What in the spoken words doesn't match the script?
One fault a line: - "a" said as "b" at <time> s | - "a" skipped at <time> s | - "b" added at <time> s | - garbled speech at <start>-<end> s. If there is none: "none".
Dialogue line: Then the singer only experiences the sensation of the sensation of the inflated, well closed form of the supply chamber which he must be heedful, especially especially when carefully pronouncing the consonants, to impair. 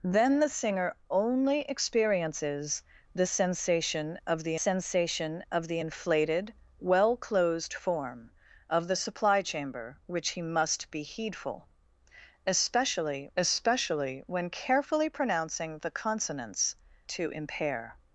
none